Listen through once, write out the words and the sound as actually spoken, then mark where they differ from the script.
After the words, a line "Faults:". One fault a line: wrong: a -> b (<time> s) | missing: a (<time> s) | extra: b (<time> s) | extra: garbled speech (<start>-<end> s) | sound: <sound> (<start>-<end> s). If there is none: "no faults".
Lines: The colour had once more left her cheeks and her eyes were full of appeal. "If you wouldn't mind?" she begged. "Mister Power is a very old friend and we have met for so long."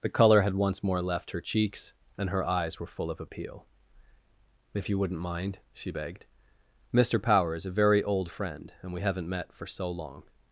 The colour had once more left her cheeks and her eyes were full of appeal. "If you wouldn't mind?" she begged. "Mister Power is a very old friend and we haven't met for so long."
Faults:
wrong: have -> haven't (9.0 s)